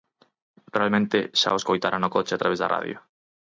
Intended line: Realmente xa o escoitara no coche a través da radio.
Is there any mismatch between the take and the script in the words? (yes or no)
no